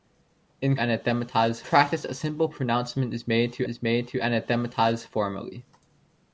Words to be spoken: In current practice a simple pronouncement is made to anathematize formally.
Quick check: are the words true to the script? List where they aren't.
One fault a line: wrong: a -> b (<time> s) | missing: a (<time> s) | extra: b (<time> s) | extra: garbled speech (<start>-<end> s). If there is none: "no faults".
wrong: current -> anathematize (0.8 s)
extra: is made to (3.7 s)